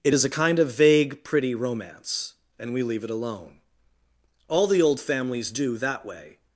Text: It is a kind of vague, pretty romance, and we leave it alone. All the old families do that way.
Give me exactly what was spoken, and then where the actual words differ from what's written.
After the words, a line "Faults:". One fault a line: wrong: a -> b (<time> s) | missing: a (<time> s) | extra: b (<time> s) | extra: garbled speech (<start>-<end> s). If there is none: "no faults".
It is a kind of vague, pretty romance, and we leave it alone. All the old families do that way.
Faults:
no faults